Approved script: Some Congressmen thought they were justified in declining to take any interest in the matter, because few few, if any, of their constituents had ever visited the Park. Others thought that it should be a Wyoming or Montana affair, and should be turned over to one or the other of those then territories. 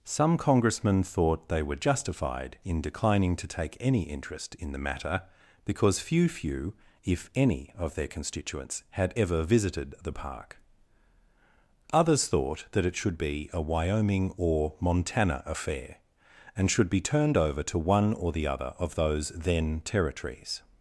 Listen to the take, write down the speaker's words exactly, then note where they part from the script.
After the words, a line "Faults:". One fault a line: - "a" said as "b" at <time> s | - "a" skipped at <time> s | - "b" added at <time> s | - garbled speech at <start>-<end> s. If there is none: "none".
Some Congressmen thought they were justified in declining to take any interest in the matter, because few few, if any, of their constituents had ever visited the Park. Others thought that it should be a Wyoming or Montana affair, and should be turned over to one or the other of those then territories.
Faults:
none